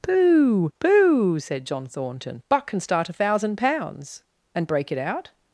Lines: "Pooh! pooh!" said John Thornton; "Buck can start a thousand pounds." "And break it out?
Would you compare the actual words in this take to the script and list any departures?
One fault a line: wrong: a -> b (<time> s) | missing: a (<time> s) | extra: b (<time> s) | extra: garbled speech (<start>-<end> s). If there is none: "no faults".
no faults